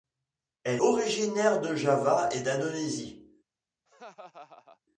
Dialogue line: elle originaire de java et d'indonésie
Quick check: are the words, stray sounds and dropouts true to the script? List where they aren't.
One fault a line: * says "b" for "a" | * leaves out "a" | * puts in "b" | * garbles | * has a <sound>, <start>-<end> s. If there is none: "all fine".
* has a laugh, 3.9-4.8 s